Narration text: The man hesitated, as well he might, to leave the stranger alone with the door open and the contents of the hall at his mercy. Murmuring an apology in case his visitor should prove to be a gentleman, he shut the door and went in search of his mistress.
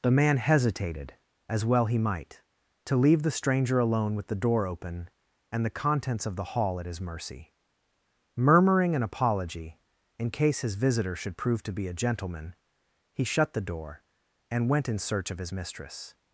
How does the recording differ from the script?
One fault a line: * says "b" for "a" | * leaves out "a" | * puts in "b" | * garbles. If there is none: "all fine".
all fine